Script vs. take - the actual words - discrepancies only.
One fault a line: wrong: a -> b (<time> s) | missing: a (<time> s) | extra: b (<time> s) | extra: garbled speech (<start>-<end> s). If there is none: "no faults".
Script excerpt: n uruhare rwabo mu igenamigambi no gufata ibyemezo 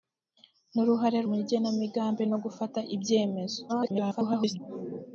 missing: rwabo (1.2 s)
extra: garbled speech (3.7-4.6 s)